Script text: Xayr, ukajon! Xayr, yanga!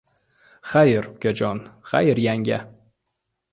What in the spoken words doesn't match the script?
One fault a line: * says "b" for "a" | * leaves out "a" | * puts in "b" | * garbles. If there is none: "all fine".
all fine